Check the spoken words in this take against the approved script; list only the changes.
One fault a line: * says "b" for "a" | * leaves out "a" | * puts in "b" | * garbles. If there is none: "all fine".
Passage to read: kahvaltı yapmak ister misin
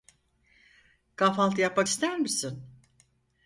all fine